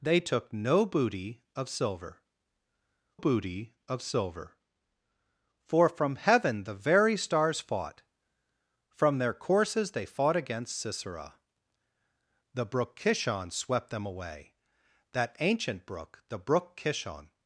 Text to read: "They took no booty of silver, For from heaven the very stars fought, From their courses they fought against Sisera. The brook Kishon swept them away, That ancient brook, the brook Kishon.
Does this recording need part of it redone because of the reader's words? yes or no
yes